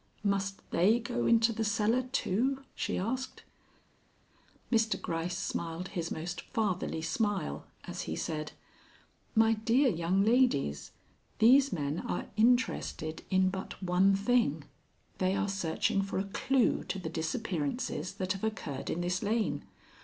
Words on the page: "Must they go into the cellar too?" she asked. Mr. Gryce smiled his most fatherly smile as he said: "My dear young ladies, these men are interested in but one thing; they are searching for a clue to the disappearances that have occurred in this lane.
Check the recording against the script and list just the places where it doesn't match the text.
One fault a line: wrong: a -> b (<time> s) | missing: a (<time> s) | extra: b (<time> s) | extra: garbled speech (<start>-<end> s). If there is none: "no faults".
no faults